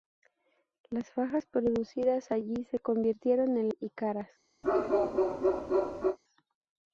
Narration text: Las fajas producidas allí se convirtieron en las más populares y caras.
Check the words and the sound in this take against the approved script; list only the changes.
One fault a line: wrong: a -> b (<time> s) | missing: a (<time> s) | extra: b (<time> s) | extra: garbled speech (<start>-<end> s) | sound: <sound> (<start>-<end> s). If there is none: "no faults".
missing: las más populares (3.7 s)
sound: bark (4.6-6.2 s)